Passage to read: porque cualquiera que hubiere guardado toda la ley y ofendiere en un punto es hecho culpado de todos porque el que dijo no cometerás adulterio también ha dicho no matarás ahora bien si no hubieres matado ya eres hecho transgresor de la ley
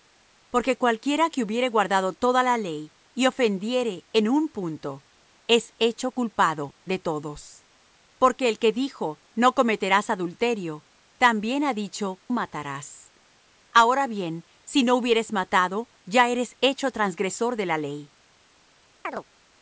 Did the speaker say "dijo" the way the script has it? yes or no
yes